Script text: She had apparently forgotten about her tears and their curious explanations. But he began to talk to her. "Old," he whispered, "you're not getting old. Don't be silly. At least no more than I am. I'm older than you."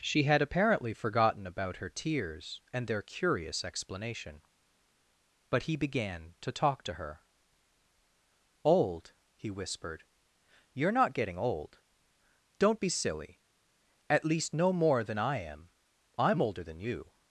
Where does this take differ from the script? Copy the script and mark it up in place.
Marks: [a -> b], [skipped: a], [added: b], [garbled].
She had apparently forgotten about her tears and their curious [explanations. -> explanation] But he began to talk to her. "Old," he whispered, "you're not getting old. Don't be silly. At least no more than I am. I'm older than you."